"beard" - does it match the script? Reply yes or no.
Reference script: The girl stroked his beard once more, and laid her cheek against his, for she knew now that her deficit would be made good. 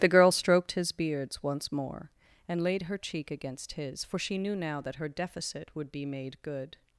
no